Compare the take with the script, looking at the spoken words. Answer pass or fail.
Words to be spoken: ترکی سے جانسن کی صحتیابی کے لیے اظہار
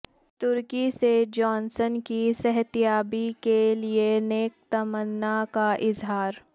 fail